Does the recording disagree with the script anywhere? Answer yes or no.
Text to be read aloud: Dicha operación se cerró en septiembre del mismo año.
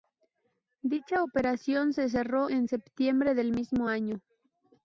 no